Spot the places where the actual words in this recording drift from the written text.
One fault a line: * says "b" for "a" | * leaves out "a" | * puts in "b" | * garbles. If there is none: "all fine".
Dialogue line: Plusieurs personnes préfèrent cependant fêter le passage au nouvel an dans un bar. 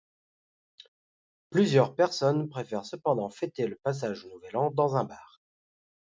all fine